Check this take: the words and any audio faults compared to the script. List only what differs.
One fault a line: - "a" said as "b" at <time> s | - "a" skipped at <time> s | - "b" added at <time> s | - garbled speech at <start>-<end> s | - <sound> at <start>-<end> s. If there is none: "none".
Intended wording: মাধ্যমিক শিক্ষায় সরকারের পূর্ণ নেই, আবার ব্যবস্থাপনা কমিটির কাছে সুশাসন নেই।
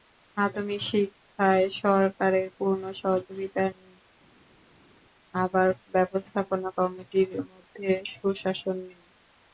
- "সহযোগিতা" added at 3.0 s
- "কাছে" said as "মধ্যে" at 7.5 s